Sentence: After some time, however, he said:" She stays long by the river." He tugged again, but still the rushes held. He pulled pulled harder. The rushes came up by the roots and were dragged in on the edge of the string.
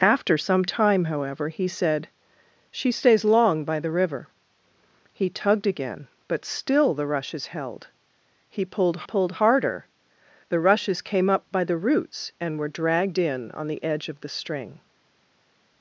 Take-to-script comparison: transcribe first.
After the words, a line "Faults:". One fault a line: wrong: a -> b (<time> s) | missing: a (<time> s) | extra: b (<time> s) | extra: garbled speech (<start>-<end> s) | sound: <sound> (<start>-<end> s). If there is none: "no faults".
After some time, however, he said:" She stays long by the river." He tugged again, but still the rushes held. He pulled pulled harder. The rushes came up by the roots and were dragged in on the edge of the string.
Faults:
no faults